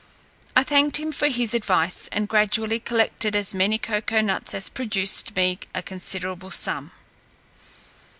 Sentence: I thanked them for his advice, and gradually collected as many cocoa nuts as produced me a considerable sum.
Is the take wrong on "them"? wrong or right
wrong